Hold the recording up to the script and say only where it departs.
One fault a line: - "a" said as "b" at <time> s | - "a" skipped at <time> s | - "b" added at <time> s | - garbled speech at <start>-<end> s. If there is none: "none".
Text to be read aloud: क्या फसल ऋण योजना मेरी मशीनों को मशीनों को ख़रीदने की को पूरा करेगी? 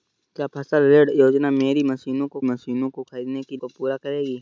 none